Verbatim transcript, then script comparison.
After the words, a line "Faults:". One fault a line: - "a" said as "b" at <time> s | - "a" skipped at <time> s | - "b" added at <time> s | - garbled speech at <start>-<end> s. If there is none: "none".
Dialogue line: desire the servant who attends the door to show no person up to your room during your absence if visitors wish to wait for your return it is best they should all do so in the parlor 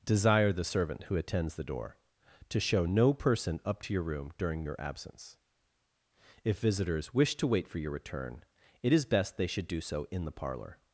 desire the servant who attends the door to show no person up to your room during your absence if visitors wish to wait for your return it is best they should do so in the parlor
Faults:
- "all" skipped at 9.7 s